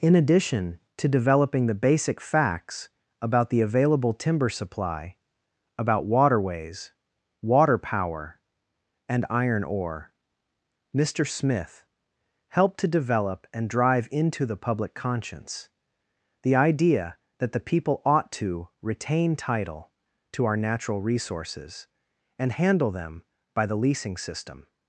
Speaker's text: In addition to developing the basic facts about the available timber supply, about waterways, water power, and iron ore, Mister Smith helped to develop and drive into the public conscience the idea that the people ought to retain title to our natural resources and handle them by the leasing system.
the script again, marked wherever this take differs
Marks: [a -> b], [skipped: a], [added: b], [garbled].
In addition to developing the basic facts about the available timber supply, about waterways, water power, and iron ore, Mister Smith helped to develop and drive into the public conscience the idea that the people ought to retain title to our natural resources and handle them by the leasing system.